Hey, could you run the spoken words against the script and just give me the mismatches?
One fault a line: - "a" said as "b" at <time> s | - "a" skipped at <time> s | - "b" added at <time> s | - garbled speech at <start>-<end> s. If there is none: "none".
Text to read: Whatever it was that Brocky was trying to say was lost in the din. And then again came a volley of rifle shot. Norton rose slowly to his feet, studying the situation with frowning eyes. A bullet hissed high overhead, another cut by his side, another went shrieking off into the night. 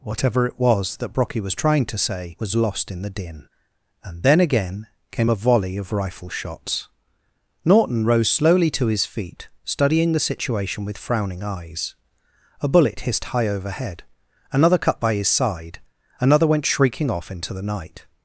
- "shot" said as "shots" at 6.3 s